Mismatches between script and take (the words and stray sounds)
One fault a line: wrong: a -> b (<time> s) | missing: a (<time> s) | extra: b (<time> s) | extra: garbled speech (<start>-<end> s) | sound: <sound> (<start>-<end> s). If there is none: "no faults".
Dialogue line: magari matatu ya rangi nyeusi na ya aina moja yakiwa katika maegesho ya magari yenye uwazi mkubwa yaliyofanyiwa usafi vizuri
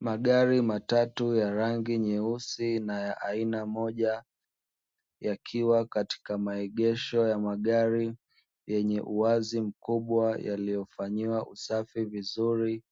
no faults